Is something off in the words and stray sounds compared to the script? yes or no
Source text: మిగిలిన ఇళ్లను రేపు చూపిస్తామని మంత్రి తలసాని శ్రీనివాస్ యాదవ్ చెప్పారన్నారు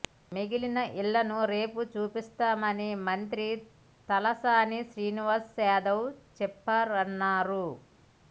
no